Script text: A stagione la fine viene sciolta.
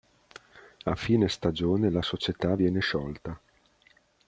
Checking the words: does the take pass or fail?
fail